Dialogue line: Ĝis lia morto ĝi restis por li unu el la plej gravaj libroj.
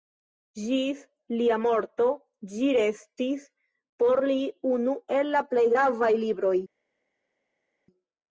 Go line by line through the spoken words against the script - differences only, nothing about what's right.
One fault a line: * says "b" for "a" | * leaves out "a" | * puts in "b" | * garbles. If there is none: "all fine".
all fine